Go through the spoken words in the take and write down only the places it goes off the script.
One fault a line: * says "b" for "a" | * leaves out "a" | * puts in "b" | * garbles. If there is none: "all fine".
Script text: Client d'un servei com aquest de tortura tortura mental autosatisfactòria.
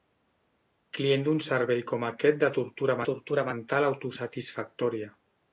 all fine